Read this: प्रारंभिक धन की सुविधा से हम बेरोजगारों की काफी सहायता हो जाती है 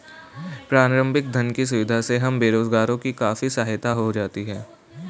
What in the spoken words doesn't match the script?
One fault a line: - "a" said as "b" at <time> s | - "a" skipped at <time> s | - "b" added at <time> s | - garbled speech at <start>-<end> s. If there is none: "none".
none